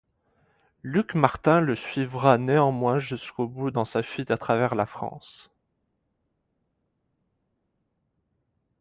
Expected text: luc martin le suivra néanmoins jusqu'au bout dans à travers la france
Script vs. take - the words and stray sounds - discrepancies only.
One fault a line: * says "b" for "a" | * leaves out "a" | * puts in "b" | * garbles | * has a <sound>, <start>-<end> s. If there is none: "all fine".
* puts in "sa fuite"